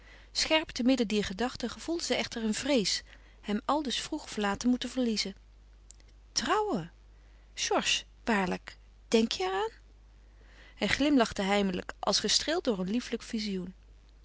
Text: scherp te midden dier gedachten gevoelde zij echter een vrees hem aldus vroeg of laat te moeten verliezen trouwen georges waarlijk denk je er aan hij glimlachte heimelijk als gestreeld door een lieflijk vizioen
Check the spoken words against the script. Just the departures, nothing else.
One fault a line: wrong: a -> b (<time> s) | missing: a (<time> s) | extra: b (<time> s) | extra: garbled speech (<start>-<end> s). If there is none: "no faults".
no faults